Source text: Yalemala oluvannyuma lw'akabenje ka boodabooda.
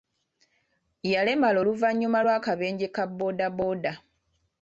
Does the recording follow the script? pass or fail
pass